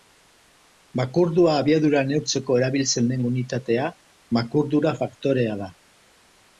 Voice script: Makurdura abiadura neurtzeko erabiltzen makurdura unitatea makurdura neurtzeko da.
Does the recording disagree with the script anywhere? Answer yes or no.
yes